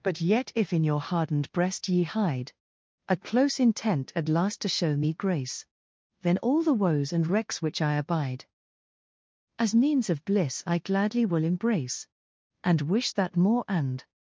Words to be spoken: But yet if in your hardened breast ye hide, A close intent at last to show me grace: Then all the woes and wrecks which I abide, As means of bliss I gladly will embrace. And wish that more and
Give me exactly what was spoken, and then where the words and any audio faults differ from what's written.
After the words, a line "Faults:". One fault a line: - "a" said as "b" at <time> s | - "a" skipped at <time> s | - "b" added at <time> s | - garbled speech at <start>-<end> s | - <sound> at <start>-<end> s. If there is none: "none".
But yet if in your hardened breast ye hide, A close intent at last to show me grace: Then all the woes and wrecks which I abide, As means of bliss I gladly will embrace. And wish that more and
Faults:
none